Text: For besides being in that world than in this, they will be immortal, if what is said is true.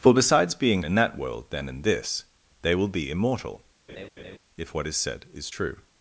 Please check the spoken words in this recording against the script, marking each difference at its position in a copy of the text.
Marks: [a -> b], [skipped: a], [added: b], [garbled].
For besides being in that world than in this, they will be immortal, if what is said is true.